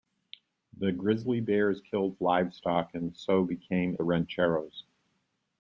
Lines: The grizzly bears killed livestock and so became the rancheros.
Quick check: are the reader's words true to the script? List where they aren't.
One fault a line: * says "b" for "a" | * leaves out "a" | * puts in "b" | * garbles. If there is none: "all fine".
all fine